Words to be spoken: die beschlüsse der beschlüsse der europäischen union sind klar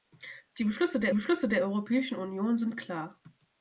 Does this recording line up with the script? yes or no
yes